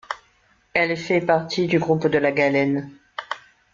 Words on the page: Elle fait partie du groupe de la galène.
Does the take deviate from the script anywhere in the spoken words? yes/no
no